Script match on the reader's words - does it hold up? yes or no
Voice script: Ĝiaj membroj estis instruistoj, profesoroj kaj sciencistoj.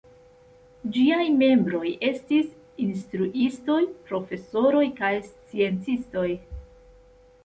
yes